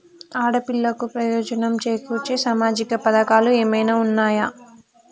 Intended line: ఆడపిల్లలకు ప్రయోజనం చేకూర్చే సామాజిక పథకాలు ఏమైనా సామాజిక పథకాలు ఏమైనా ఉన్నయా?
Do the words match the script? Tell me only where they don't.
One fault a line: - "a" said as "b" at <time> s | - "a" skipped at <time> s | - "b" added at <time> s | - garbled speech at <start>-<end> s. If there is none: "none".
- "సామాజిక పథకాలు ఏమైనా" skipped at 4.0 s